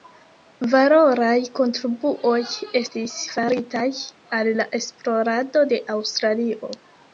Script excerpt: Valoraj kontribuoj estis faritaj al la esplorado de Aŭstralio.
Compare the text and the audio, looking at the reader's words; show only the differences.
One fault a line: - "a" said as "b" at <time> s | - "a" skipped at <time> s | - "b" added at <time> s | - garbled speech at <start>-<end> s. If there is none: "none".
none